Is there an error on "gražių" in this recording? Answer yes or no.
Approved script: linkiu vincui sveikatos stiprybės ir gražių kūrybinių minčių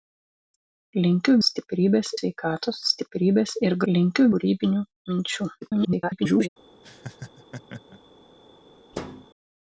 yes